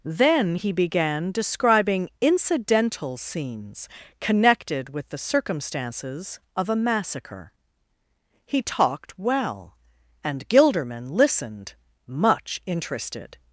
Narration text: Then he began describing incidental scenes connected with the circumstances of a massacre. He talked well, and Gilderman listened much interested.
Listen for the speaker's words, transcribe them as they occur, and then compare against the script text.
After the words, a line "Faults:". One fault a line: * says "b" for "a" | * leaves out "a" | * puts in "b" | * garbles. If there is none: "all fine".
Then he began describing incidental scenes connected with the circumstances of a massacre. He talked well, and Gilderman listened much interested.
Faults:
all fine